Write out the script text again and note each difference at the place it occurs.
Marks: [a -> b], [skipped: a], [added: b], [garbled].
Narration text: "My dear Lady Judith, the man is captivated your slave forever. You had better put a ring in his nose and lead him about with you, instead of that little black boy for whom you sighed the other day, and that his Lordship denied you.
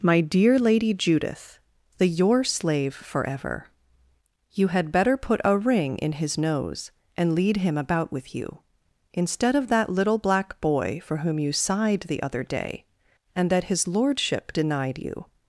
"My dear Lady Judith, the [skipped: man is captivated] your slave forever. You had better put a ring in his nose and lead him about with you, instead of that little black boy for whom you sighed the other day, and that his Lordship denied you.